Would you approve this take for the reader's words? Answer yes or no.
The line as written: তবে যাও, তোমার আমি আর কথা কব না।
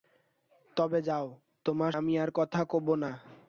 yes